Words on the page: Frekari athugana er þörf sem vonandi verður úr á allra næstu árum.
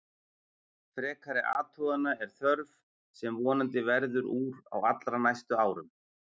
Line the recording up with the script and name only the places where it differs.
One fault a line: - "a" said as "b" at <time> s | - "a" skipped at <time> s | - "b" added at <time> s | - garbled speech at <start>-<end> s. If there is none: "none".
none